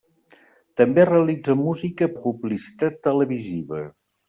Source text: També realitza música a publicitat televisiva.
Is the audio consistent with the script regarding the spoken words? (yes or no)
yes